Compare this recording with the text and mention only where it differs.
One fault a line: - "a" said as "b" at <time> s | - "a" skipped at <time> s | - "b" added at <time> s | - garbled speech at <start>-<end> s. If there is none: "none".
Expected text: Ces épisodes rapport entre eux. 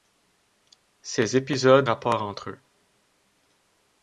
none